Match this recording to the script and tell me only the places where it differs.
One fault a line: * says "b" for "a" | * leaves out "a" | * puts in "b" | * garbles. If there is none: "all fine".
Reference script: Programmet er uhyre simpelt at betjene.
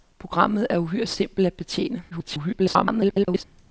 * garbles